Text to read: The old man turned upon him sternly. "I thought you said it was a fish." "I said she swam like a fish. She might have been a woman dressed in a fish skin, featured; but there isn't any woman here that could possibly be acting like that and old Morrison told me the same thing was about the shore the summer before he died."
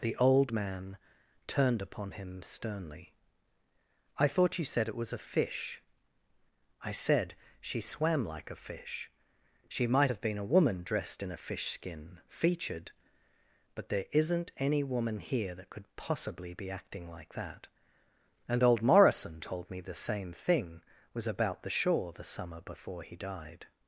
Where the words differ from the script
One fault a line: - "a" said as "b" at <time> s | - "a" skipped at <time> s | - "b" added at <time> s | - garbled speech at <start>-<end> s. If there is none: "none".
none